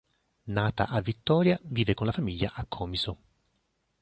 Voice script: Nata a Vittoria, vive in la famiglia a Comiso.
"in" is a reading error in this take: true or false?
true